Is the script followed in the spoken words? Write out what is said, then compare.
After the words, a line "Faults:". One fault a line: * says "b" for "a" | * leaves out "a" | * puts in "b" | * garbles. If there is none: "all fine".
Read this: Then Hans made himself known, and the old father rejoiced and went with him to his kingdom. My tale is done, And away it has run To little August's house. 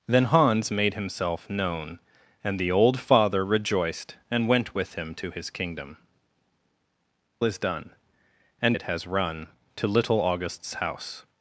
Then Hans made himself known, and the old father rejoiced and went with him to his kingdom. Is done, And it has run To little August's house.
Faults:
* leaves out "My tale"
* leaves out "away"